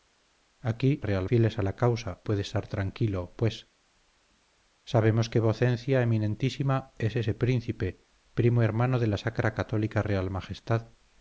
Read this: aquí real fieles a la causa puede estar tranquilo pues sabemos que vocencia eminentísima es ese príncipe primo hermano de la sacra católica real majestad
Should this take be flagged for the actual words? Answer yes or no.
no